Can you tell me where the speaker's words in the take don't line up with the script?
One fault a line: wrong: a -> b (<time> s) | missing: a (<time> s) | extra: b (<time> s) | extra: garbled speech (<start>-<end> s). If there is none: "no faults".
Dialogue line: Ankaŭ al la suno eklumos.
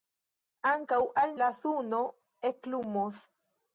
no faults